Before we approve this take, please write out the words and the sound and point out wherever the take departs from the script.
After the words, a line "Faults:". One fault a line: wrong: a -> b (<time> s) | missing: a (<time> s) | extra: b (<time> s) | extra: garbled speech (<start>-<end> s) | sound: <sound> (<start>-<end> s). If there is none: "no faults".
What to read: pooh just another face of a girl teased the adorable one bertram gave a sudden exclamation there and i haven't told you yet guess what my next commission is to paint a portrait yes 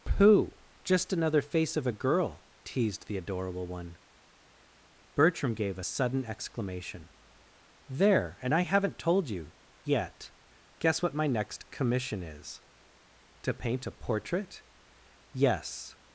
pooh just another face of a girl teased the adorable one bertram gave a sudden exclamation there and i haven't told you yet guess what my next commission is to paint a portrait yes
Faults:
no faults